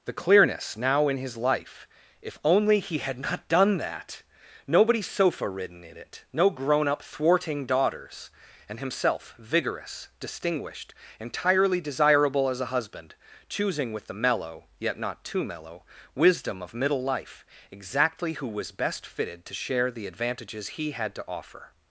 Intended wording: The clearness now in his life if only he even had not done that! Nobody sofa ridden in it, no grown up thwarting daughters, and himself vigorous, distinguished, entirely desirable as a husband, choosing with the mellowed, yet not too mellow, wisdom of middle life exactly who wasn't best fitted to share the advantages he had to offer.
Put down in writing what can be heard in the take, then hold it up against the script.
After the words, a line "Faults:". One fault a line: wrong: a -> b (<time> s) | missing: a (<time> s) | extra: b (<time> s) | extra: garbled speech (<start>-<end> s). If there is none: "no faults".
The clearness now in his life if only he had not done that! Nobody sofa ridden in it, no grown up thwarting daughters, and himself vigorous, distinguished, entirely desirable as a husband, choosing with the mellow, yet not too mellow, wisdom of middle life exactly who was best fitted to share the advantages he had to offer.
Faults:
missing: even (3.0 s)
wrong: mellowed -> mellow (14.2 s)
wrong: wasn't -> was (18.5 s)